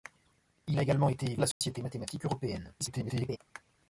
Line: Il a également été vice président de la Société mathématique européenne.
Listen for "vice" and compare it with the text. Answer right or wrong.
wrong